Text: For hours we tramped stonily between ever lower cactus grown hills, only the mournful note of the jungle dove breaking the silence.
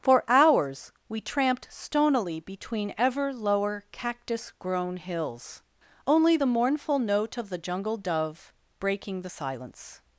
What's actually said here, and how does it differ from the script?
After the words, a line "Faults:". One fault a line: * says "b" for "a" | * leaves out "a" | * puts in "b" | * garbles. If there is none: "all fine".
For hours we tramped stonily between ever lower cactus grown hills, only the mournful note of the jungle dove breaking the silence.
Faults:
all fine